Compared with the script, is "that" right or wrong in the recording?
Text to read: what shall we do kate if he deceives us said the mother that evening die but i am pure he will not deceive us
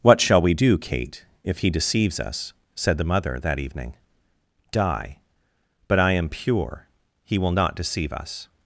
right